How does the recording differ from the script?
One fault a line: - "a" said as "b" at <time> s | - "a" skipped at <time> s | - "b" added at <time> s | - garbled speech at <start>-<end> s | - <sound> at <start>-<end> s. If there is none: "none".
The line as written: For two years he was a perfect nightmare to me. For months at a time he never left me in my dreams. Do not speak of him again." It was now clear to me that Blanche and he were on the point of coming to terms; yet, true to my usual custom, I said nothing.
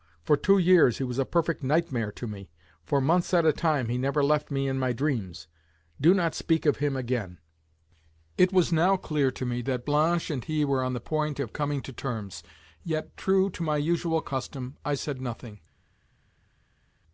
none